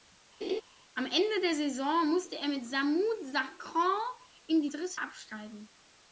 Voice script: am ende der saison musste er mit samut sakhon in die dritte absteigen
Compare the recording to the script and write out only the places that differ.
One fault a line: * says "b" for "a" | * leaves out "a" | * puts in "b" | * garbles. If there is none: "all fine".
all fine